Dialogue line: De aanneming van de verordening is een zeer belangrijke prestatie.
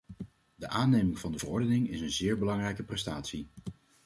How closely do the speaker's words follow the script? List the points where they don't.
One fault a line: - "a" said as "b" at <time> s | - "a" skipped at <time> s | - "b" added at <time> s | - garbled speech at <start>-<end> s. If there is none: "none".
none